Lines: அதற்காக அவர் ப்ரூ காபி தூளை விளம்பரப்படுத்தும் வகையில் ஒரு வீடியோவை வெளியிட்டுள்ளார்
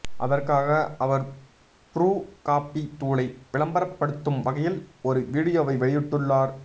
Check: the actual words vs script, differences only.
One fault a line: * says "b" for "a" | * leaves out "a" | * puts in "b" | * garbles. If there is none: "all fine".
all fine